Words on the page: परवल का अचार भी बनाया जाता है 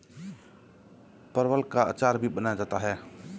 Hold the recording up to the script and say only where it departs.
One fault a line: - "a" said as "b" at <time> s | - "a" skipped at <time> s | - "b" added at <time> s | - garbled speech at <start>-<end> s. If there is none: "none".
none